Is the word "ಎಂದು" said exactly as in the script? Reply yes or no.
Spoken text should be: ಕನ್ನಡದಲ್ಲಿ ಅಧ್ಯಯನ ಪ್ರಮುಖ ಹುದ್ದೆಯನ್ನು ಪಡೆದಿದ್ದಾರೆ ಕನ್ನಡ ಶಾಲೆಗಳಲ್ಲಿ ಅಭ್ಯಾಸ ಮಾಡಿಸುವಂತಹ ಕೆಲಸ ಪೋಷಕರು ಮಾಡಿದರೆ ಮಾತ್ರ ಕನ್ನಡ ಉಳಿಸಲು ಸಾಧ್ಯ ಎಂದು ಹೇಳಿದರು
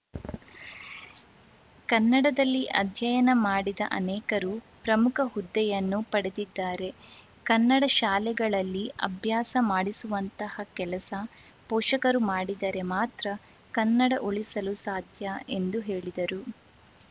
yes